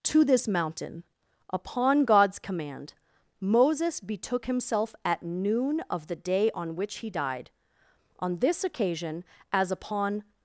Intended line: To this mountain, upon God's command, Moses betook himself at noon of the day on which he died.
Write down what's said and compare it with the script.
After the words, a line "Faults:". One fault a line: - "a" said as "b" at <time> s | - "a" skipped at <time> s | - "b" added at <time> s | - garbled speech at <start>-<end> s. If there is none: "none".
To this mountain, upon God's command, Moses betook himself at noon of the day on which he died. On this occasion, as upon
Faults:
- "On this occasion as upon" added at 8.2 s